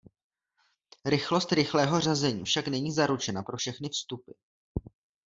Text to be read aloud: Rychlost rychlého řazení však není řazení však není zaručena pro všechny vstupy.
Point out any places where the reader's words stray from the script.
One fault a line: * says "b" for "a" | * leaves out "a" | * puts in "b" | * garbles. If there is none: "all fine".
* leaves out "řazení však není"